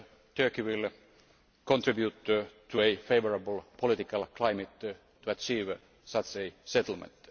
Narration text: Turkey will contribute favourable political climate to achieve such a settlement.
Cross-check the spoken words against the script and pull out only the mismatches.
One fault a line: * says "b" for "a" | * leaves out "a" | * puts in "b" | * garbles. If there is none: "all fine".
* puts in "to a"